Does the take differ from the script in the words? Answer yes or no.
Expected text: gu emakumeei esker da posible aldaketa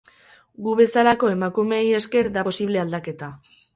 yes